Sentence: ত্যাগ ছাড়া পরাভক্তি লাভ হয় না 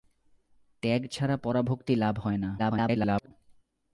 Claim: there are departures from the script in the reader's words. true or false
true